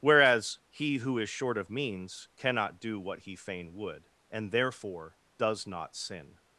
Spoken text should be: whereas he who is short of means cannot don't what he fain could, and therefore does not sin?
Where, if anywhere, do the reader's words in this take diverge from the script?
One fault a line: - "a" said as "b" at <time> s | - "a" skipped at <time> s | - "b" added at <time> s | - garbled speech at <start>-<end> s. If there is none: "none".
- "don't" said as "do" at 2.8 s
- "could" said as "would" at 3.7 s